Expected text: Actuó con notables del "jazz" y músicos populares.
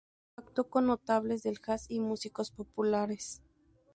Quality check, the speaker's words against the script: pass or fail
pass